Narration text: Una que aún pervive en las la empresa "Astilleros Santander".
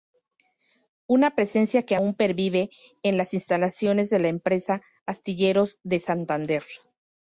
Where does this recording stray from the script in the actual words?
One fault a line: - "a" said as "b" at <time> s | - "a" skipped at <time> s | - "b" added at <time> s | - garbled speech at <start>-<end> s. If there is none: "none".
- "presencia" added at 1.4 s
- "instalaciones de" added at 3.3 s
- "de" added at 5.8 s